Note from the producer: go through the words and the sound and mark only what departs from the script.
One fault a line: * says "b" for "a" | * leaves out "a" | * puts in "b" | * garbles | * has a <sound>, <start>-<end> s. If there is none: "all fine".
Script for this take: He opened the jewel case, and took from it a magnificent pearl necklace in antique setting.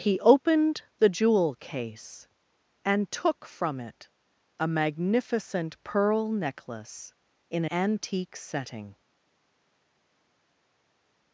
all fine